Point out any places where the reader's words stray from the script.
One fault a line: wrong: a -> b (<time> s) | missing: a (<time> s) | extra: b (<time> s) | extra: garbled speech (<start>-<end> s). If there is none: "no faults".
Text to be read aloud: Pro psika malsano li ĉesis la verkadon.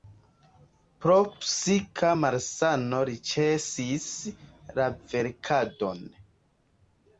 no faults